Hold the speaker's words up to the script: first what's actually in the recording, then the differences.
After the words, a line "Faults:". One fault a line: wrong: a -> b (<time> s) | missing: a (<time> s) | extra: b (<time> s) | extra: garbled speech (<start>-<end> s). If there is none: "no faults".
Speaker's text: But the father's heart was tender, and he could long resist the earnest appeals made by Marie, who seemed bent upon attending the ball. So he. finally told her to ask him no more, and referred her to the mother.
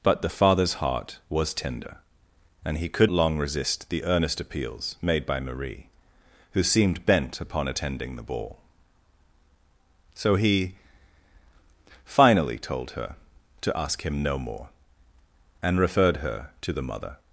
But the father's heart was tender, and he could long resist the earnest appeals made by Marie, who seemed bent upon attending the ball. So he. finally told her to ask him no more, and referred her to the mother.
Faults:
no faults